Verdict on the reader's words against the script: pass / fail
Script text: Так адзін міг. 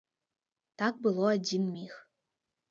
fail